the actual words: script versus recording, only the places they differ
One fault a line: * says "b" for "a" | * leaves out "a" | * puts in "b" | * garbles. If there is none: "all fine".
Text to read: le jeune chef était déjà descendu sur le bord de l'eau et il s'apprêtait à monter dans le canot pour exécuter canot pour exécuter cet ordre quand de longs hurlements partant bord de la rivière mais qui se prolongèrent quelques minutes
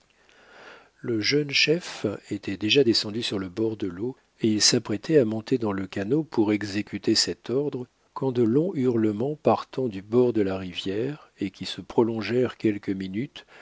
* leaves out "canot pour exécuter"
* puts in "du"
* says "et" for "mais"